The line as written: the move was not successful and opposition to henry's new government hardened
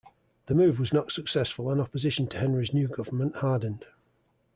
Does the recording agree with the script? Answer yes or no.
yes